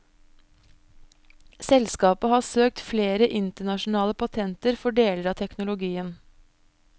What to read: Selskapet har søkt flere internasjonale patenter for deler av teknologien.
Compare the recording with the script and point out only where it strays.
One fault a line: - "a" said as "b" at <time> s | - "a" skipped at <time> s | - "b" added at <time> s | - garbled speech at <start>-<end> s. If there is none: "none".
none